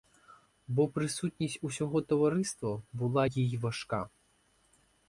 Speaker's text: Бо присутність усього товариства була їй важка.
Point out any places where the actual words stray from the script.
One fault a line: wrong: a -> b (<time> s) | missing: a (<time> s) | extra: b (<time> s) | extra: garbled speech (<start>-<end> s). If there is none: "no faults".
no faults